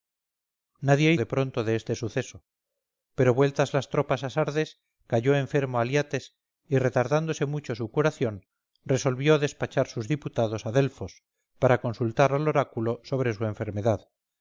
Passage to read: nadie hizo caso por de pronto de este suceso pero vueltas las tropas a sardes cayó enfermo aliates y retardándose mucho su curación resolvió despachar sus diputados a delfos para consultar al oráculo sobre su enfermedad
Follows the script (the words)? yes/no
no